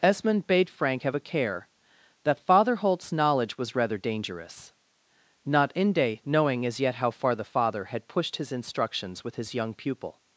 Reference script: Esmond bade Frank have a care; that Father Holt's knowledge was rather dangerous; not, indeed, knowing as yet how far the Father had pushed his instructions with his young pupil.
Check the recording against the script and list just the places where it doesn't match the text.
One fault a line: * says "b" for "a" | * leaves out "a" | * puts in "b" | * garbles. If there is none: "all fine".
* says "inde" for "indeed"